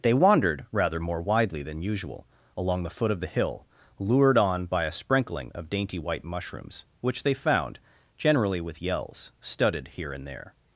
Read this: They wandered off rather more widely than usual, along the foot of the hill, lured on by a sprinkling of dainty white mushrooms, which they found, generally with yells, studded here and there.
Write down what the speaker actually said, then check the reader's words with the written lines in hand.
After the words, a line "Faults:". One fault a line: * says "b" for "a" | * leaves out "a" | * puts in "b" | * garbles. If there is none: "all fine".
They wandered rather more widely than usual, along the foot of the hill, lured on by a sprinkling of dainty white mushrooms, which they found, generally with yells, studded here and there.
Faults:
* leaves out "off"